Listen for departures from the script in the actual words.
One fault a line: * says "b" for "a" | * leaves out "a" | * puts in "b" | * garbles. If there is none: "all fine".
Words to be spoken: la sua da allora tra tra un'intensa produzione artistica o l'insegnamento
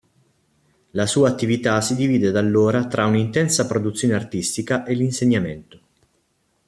* puts in "attività si divide"
* leaves out "tra"
* says "e" for "o"